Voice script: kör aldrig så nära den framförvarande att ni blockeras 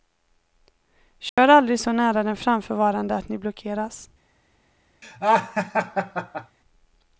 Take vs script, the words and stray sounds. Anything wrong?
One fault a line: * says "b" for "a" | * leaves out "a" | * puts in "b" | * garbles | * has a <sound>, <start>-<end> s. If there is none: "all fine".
* has a dropout, 1.3-1.4 s
* has a laugh, 5.0-6.6 s